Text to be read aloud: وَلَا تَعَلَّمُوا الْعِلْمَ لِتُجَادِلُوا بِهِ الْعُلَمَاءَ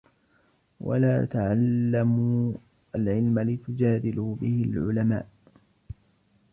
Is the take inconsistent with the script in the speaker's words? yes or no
no